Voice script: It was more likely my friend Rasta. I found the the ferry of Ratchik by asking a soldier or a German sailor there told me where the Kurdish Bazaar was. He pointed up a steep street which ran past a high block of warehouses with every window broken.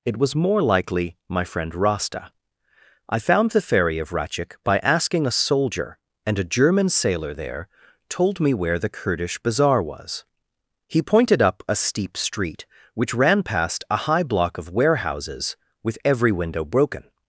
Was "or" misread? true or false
true